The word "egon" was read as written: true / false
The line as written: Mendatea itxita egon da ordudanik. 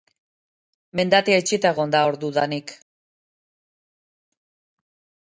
true